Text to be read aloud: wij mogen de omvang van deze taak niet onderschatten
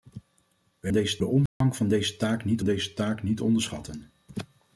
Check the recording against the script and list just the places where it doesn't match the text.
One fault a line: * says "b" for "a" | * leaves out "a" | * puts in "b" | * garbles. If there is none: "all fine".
* says "deze" for "mogen"
* puts in "deze taak niet"